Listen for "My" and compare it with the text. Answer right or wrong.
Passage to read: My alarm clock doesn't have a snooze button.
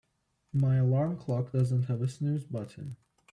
right